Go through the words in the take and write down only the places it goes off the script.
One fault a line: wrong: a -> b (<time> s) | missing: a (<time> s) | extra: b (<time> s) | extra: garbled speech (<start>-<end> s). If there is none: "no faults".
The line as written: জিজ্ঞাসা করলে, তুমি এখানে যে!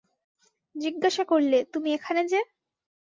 no faults